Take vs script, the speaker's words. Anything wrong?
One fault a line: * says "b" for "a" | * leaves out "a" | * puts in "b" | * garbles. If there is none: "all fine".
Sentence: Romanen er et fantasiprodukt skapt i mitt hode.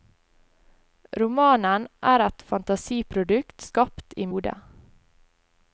* leaves out "mitt"